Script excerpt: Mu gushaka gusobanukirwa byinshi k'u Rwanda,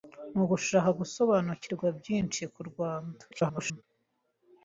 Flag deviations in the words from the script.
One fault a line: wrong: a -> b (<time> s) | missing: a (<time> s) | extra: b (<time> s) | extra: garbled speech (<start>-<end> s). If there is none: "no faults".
extra: garbled speech (3.3-3.8 s)